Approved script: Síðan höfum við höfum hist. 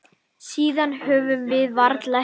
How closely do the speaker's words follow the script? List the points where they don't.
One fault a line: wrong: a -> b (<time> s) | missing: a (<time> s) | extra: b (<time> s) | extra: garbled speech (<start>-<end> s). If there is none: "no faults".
wrong: höfum -> varla (1.8 s)